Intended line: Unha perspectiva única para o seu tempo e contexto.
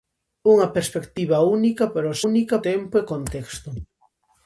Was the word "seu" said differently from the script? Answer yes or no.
yes